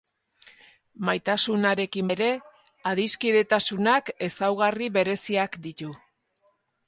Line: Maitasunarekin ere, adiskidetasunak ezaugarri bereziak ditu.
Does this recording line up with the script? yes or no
yes